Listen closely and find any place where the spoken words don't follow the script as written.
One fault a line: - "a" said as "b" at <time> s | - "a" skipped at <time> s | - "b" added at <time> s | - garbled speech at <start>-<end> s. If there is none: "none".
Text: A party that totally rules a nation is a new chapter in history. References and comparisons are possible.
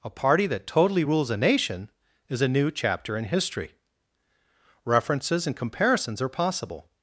none